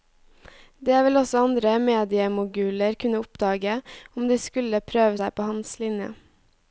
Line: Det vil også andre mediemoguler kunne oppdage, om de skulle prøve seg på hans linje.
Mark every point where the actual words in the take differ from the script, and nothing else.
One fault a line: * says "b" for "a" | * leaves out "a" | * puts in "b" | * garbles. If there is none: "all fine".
all fine